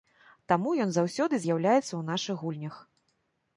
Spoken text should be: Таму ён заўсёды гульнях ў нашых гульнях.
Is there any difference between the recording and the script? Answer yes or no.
yes